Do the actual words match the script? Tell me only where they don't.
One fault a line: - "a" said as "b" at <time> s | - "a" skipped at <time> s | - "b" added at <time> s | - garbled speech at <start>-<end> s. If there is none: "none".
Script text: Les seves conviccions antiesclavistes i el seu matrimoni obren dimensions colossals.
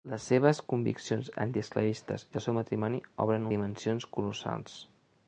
none